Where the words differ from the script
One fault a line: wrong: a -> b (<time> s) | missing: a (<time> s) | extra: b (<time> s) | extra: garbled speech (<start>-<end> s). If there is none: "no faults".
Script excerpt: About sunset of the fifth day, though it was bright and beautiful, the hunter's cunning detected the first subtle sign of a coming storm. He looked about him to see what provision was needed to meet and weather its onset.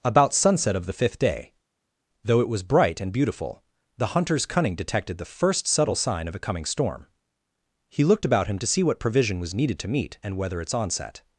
no faults